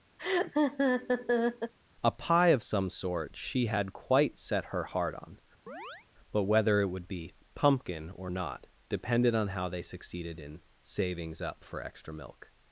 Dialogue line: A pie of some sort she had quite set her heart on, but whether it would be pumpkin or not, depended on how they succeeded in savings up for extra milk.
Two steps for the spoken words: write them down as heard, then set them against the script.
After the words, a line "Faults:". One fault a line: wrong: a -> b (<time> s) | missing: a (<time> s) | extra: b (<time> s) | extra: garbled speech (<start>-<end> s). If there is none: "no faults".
A pie of some sort she had quite set her heart on, but whether it would be pumpkin or not, depended on how they succeeded in savings up for extra milk.
Faults:
no faults